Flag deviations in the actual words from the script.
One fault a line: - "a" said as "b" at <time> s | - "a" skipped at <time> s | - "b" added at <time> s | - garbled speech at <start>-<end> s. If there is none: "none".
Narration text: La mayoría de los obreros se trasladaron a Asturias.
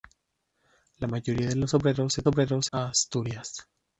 - "trasladaron" said as "obreros" at 2.3 s